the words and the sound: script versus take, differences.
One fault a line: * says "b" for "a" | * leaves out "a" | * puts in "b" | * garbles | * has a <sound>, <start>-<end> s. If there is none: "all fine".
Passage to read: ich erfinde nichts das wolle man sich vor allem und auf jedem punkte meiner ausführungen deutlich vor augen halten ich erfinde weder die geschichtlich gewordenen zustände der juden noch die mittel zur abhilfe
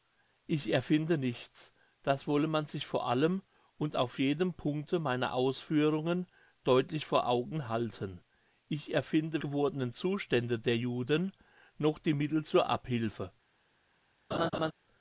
* leaves out "weder die geschichtlich"
* has a laugh, 14.3-14.7 s